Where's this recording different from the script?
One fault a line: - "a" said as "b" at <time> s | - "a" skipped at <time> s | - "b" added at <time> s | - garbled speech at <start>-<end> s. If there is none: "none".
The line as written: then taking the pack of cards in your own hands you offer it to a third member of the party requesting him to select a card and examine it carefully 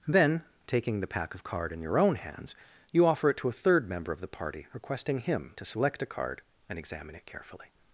- "cards" said as "card" at 1.4 s